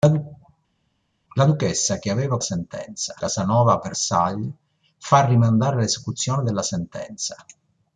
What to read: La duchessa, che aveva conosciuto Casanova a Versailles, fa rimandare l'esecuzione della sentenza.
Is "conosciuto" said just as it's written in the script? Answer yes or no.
no